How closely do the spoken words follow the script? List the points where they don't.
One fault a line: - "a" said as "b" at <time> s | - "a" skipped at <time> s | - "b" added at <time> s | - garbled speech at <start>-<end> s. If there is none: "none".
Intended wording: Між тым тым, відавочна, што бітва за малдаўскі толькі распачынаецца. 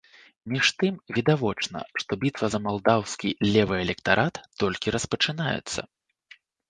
- "тым" skipped at 0.9 s
- "левы электарат" added at 3.5 s